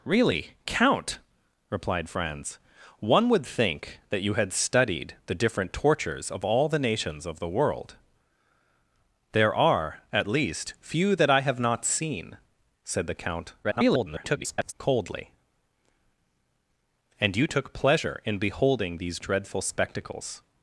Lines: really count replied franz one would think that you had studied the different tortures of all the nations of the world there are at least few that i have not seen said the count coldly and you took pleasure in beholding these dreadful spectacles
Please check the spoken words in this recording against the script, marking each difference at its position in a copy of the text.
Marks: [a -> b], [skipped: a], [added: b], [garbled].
really count replied franz one would think that you had studied the different tortures of all the nations of the world there are at least few that i have not seen said the count [garbled] coldly and you took pleasure in beholding these dreadful spectacles